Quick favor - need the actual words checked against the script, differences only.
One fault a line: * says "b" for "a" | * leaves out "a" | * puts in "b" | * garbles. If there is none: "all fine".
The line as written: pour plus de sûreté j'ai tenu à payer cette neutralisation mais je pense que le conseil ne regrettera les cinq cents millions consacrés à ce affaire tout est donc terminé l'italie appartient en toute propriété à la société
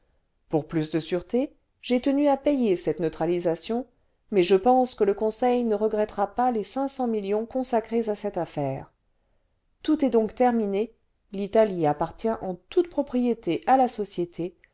* puts in "pas"
* says "cette" for "ce"